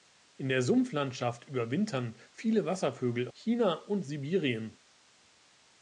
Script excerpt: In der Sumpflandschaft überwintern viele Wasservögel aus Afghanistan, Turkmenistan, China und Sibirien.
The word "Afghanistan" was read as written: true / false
false